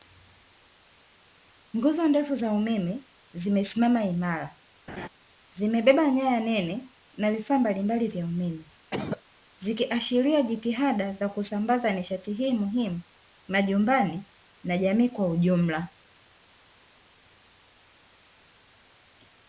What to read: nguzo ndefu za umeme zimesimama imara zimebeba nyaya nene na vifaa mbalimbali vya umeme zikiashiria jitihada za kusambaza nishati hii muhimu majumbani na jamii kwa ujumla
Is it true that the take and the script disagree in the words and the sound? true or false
true